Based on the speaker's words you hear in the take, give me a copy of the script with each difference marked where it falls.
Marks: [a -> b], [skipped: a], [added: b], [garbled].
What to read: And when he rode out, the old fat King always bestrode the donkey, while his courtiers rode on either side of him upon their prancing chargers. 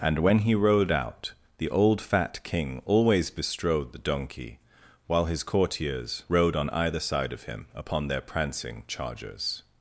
And when he rode out, the old fat King always bestrode the donkey, while his courtiers rode on either side of him upon their prancing chargers.